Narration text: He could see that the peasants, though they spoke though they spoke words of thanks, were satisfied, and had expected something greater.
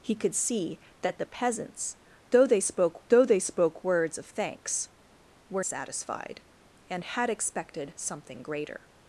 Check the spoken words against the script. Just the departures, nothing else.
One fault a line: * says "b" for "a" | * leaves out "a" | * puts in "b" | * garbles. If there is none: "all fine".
all fine